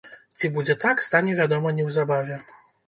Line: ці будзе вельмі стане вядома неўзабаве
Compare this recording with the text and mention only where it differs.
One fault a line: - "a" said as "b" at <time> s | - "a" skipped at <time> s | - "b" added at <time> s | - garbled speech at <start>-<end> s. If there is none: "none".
- "вельмі" said as "так" at 0.8 s